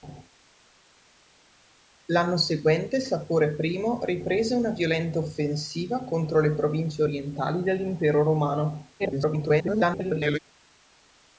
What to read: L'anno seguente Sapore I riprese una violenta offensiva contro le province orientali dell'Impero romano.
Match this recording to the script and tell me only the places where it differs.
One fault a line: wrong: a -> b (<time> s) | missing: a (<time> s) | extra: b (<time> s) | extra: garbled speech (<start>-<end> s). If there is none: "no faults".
extra: garbled speech (9.0-10.4 s)